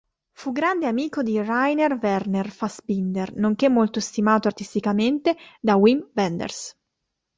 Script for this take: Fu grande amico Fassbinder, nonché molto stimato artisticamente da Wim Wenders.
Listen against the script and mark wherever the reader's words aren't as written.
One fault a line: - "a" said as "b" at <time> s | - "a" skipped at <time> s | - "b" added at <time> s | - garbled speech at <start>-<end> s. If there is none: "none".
- "di Rainer Werner" added at 1.2 s